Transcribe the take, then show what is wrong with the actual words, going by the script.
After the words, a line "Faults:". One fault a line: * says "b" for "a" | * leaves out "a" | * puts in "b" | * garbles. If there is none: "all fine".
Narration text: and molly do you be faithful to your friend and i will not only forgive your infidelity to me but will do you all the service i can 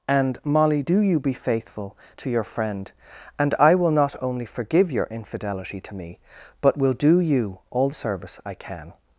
and molly do you be faithful to your friend and i will not only forgive your infidelity to me but will do you all the service i can
Faults:
all fine